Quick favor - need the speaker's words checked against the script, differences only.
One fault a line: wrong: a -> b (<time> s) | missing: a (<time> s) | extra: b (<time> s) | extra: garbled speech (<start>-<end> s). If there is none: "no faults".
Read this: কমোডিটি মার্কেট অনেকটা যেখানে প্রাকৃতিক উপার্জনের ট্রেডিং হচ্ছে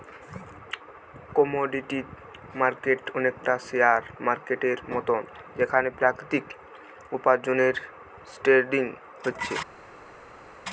extra: শেয়ার মার্কেটের মতন (3.7 s)